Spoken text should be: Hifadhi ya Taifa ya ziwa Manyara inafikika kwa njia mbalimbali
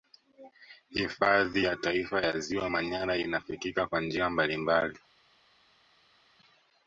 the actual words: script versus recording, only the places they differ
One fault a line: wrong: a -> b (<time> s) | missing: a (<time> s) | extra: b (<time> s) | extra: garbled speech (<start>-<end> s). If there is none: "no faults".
no faults